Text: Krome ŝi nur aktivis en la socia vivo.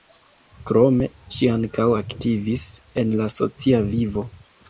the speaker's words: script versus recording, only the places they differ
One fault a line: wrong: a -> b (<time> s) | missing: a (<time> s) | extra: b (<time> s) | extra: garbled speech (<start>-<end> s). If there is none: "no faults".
wrong: nur -> ankaŭ (1.6 s)